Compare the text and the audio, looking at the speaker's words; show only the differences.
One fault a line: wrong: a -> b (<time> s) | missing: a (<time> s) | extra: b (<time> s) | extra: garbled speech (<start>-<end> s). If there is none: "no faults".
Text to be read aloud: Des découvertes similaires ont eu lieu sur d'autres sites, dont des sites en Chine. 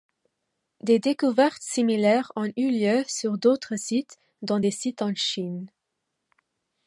no faults